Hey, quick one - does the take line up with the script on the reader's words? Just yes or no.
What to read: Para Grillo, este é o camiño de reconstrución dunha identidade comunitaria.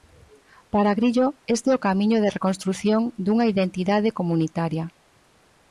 yes